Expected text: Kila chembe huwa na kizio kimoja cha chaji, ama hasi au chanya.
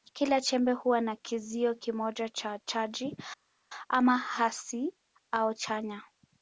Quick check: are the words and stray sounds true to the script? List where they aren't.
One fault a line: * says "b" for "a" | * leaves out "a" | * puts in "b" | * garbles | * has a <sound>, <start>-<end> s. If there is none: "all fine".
all fine